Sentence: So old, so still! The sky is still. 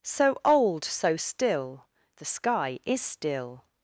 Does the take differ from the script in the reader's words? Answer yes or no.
no